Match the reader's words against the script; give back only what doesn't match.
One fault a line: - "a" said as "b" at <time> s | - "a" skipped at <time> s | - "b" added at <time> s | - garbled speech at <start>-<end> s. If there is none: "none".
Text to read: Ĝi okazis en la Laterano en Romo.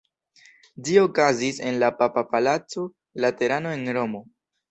- "papa palaco" added at 2.0 s